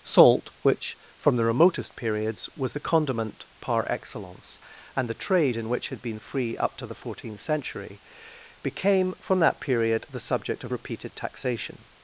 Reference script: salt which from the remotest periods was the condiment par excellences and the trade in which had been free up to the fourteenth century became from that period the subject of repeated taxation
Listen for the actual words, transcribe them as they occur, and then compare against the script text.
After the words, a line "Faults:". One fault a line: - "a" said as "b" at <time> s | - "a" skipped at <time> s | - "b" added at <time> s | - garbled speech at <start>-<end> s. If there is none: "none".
salt which from the remotest periods was the condiment par excellence and the trade in which had been free up to the fourteenth century became from that period the subject of repeated taxation
Faults:
- "excellences" said as "excellence" at 3.9 s